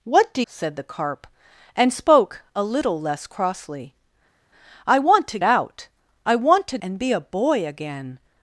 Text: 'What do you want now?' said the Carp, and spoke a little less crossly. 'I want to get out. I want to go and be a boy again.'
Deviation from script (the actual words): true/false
true